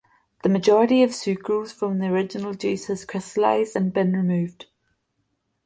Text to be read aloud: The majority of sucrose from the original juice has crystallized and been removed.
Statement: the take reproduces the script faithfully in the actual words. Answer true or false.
true